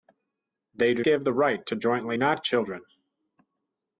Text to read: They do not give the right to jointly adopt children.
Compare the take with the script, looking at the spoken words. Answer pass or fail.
fail